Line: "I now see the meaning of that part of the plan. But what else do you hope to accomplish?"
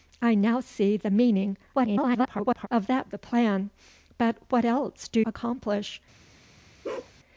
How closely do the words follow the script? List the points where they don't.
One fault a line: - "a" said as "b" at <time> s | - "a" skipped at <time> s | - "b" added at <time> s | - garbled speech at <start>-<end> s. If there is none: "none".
- garbled speech at 1.7-2.7 s
- "part of" skipped at 3.1 s
- "you hope to" skipped at 5.2 s